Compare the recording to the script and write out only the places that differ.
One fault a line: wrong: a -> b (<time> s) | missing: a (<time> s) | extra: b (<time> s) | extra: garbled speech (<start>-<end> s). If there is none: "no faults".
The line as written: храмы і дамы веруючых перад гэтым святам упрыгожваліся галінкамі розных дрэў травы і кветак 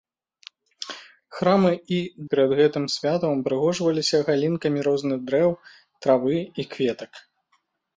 missing: дамы веруючых (2.0 s)